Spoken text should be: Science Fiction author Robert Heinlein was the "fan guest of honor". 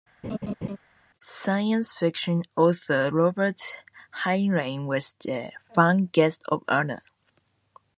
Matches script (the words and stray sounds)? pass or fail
fail